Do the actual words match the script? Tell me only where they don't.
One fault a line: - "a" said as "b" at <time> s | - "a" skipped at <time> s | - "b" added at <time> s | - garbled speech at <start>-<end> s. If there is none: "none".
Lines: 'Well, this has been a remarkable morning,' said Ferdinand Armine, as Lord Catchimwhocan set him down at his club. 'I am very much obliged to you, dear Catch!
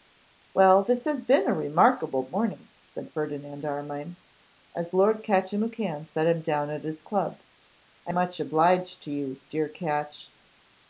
- "am very" skipped at 8.1 s